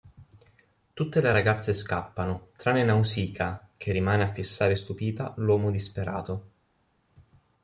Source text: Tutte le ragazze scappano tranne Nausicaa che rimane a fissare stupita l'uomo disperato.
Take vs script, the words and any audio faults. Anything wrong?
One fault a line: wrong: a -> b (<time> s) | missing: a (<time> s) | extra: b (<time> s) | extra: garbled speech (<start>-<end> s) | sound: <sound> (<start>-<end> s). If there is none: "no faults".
no faults